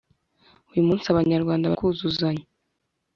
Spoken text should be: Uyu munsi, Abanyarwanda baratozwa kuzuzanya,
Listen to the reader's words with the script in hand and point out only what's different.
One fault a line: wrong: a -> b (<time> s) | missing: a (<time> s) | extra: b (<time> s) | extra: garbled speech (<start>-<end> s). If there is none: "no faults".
missing: baratozwa (1.7 s)